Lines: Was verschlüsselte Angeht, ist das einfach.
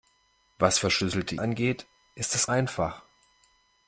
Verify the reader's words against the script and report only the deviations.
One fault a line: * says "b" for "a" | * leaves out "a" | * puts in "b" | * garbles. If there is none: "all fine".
all fine